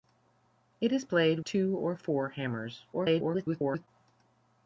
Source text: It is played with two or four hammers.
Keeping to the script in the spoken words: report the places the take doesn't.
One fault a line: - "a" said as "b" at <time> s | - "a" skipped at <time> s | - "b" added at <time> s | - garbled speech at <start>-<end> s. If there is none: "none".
- "with" skipped at 1.4 s
- garbled speech at 2.9-3.9 s